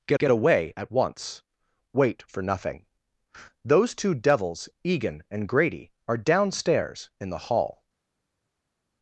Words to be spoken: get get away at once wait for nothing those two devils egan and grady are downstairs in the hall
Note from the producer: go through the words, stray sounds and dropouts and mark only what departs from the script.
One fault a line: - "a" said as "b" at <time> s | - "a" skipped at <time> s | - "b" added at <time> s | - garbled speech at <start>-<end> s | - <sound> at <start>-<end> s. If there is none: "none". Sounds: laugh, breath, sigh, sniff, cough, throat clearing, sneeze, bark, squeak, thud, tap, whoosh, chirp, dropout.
none